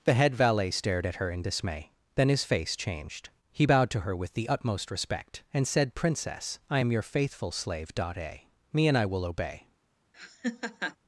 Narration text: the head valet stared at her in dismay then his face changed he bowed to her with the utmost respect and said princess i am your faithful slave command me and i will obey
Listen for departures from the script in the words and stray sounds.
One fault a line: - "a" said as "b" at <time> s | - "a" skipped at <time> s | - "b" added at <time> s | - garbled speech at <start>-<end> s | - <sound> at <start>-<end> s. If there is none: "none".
- "command" said as "dot a" at 7.9 s
- laugh at 10.1-11.0 s